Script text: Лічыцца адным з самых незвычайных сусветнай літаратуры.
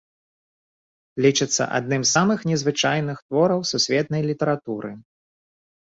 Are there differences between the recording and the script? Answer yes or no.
yes